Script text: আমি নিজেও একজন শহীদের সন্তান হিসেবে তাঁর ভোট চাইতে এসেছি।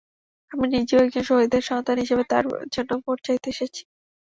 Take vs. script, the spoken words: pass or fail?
fail